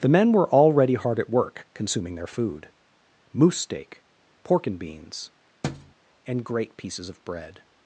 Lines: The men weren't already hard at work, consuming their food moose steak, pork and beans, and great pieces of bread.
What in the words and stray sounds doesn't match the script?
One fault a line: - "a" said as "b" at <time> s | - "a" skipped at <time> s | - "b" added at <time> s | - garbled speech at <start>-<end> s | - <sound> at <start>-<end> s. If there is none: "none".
- "weren't" said as "were" at 0.3 s
- thud at 5.6-5.9 s